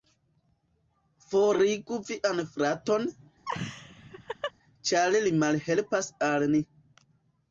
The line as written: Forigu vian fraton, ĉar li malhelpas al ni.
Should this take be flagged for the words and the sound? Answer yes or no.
yes